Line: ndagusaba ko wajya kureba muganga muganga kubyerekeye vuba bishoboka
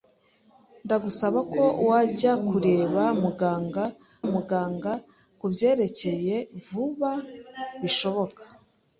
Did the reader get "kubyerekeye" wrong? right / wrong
right